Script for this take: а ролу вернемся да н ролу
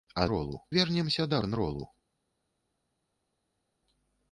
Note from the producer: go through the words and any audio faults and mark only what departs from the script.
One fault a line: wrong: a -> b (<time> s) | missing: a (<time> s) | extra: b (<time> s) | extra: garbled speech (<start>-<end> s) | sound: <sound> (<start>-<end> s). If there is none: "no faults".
no faults